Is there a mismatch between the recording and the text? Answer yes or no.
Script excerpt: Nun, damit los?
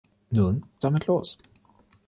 no